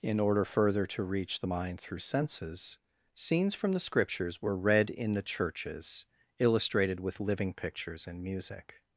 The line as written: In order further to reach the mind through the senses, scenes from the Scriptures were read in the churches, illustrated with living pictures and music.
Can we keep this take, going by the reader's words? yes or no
no